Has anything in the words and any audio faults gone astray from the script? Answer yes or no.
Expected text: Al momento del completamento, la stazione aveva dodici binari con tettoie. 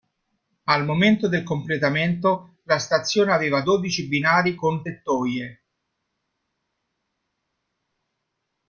no